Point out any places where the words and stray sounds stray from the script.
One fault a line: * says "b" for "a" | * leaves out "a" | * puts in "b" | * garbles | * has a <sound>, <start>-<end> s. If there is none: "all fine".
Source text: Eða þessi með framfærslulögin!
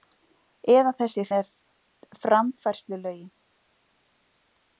all fine